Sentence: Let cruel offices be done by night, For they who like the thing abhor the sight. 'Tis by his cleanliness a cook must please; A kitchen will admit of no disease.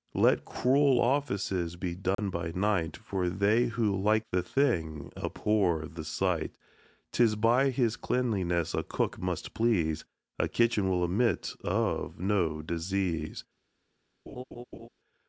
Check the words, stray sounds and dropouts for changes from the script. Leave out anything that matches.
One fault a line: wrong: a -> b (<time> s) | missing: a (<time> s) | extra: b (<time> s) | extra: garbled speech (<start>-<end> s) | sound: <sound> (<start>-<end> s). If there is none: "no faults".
sound: dropout (2.1-2.2 s)
sound: laugh (14.3-14.9 s)